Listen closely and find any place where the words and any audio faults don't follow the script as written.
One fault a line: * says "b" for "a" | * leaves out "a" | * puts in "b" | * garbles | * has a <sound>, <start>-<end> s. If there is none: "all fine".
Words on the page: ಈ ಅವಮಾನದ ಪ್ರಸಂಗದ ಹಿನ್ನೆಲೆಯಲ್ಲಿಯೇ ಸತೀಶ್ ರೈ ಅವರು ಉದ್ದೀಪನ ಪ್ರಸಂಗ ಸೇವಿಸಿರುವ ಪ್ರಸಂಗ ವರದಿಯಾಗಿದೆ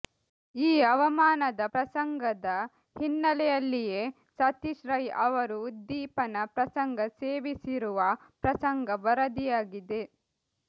all fine